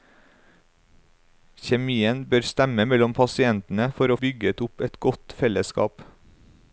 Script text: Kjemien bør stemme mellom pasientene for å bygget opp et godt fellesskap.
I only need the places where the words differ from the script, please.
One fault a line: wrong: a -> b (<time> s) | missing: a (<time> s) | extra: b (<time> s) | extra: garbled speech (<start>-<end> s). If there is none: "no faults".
no faults